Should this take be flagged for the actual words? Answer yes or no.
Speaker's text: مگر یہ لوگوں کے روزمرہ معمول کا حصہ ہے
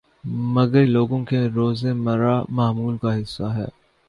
yes